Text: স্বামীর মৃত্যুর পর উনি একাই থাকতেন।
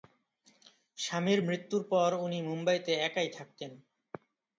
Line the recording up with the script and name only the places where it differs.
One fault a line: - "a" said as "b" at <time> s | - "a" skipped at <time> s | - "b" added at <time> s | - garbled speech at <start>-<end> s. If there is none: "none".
- "মুম্বাইতে" added at 2.4 s